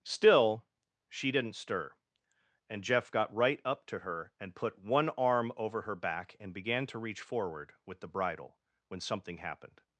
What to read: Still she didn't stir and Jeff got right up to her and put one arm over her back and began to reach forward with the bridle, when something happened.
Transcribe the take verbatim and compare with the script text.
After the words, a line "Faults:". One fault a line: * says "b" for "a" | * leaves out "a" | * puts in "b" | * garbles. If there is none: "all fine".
Still she didn't stir and Jeff got right up to her and put one arm over her back and began to reach forward with the bridle, when something happened.
Faults:
all fine